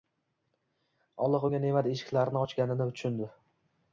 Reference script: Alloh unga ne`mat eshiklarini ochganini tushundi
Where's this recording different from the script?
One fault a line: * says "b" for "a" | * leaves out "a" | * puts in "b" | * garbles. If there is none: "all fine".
all fine